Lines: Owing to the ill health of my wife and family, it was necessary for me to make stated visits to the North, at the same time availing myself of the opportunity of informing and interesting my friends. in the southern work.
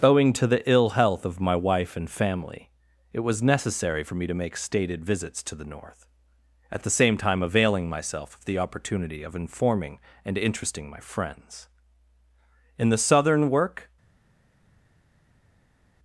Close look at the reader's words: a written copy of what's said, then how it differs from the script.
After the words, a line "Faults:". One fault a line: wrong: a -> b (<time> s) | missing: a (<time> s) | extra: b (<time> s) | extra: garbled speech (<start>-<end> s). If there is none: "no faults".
Owing to the ill health of my wife and family, it was necessary for me to make stated visits to the North, at the same time availing myself of the opportunity of informing and interesting my friends. in the southern work.
Faults:
no faults